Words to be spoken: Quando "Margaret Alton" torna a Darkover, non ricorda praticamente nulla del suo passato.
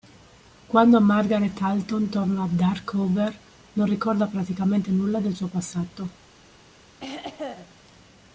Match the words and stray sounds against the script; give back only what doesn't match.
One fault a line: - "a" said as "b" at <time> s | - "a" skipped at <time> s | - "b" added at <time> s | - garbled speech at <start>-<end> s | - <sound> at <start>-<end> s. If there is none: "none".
- throat clearing at 7.0-7.7 s